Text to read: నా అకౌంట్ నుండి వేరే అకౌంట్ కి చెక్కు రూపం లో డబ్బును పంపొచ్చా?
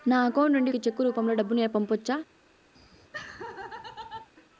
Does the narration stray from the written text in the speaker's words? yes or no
yes